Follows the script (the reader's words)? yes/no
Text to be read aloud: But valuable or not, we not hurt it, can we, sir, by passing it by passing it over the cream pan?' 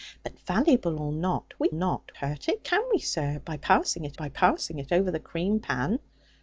yes